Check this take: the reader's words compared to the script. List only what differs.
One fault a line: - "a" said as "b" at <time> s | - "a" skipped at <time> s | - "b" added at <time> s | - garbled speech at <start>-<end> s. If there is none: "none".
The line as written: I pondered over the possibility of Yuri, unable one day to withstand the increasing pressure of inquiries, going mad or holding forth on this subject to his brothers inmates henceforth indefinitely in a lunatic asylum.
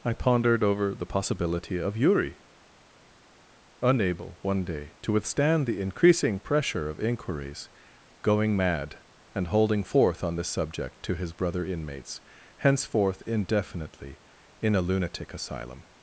- "or" said as "and" at 9.3 s
- "brothers" said as "brother" at 11.3 s